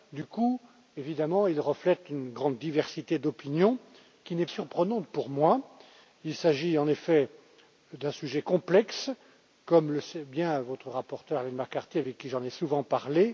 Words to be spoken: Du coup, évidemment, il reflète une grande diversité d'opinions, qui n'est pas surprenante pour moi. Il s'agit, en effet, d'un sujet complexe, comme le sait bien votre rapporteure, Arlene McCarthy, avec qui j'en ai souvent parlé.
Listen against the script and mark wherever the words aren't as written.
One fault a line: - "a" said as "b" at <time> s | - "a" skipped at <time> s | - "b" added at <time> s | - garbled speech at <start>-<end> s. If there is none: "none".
- "pas" skipped at 4.5 s